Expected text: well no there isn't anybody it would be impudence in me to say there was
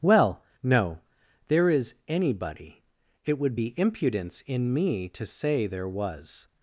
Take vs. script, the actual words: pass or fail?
fail